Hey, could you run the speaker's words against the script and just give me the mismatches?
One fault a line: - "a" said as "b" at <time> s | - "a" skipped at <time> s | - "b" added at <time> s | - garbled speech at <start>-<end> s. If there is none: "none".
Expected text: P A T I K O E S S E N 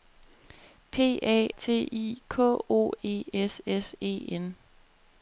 none